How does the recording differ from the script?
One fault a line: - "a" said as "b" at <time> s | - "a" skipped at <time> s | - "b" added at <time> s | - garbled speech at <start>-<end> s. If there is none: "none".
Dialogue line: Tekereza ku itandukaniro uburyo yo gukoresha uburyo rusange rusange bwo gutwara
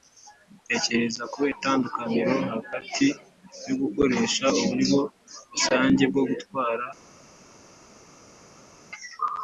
- "uburyo" said as "hagati" at 2.5 s
- "rusange" skipped at 6.0 s